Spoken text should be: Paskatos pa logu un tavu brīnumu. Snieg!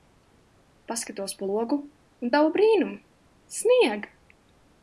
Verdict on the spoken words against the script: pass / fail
pass